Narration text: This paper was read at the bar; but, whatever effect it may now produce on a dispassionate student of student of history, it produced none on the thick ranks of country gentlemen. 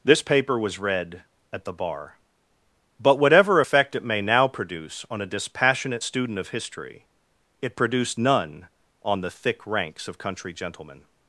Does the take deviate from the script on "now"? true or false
false